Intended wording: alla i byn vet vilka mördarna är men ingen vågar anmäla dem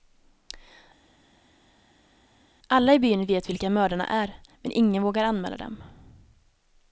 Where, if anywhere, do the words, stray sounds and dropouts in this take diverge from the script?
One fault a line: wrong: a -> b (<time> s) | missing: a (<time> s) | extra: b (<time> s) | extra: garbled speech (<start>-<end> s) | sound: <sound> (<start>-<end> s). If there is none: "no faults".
no faults